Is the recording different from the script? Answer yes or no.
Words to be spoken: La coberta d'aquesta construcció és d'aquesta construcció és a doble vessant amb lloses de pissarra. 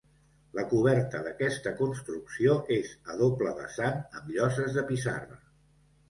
yes